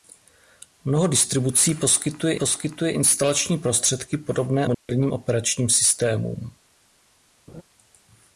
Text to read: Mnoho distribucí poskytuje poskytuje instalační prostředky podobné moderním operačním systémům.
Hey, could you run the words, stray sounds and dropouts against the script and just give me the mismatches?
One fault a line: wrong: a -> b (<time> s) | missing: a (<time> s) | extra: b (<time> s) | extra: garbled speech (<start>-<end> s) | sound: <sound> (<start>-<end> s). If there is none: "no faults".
sound: dropout (4.7-4.9 s)
sound: laugh (7.5-7.6 s)